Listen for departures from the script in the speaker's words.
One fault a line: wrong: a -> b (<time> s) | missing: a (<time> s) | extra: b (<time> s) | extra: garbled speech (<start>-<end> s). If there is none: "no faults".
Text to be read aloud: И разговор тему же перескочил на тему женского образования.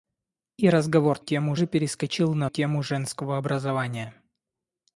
no faults